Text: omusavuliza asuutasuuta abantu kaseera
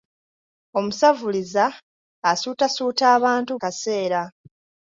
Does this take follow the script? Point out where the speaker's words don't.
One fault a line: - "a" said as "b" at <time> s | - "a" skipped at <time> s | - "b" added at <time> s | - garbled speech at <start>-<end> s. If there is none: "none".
none